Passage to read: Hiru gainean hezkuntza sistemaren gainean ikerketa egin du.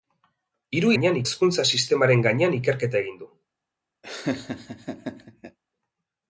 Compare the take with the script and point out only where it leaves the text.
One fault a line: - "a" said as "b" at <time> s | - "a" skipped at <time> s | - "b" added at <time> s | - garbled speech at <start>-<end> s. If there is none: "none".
none